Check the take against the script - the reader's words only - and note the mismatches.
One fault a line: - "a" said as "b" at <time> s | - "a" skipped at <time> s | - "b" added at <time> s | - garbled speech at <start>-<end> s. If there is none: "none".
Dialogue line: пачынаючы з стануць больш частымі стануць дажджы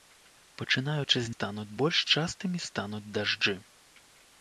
none